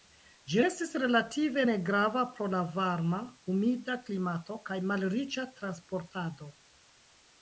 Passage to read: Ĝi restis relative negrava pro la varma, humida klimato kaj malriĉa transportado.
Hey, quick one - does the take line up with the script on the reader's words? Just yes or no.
yes